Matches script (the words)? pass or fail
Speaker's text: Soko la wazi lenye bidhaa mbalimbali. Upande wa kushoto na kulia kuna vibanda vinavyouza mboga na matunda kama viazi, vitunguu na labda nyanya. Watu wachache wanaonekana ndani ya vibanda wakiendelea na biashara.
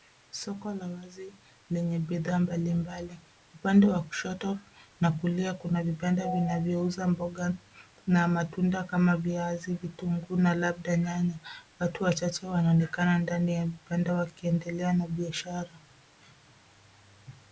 pass